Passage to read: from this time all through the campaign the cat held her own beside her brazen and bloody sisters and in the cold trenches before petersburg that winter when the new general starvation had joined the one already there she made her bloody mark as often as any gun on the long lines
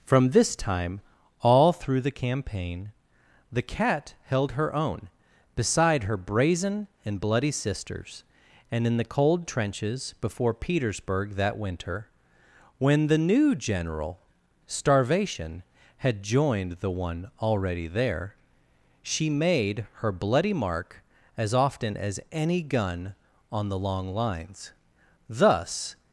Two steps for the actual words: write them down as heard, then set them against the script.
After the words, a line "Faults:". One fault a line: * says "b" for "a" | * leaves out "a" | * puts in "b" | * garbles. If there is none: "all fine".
from this time all through the campaign the cat held her own beside her brazen and bloody sisters and in the cold trenches before petersburg that winter when the new general starvation had joined the one already there she made her bloody mark as often as any gun on the long lines thus
Faults:
* puts in "thus"